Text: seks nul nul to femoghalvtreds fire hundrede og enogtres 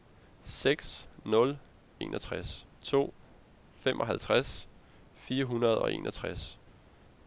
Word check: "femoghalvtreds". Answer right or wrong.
right